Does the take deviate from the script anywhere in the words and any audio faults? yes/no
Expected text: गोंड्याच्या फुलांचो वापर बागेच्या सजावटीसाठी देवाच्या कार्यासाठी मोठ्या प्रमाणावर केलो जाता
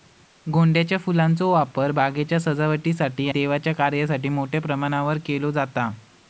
no